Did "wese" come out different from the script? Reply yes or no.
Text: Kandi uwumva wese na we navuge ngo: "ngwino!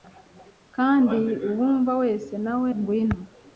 no